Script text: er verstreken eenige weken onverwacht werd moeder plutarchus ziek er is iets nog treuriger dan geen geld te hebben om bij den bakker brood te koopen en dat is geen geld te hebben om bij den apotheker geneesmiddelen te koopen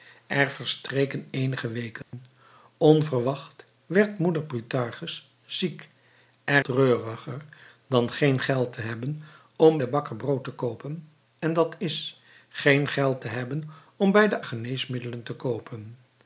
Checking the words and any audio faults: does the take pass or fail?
fail